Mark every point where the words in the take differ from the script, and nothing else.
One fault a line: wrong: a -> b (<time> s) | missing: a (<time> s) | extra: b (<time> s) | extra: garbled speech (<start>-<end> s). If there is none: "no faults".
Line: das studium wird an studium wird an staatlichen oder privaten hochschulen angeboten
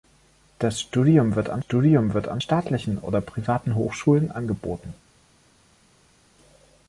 no faults